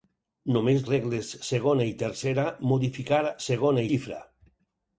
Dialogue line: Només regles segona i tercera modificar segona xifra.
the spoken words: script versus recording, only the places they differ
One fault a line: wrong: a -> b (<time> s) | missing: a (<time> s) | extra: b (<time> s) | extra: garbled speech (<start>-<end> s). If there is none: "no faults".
no faults